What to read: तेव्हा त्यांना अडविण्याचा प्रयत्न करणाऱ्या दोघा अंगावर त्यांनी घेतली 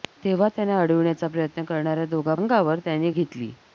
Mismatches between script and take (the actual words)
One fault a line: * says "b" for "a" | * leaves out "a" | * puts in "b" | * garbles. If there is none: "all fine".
all fine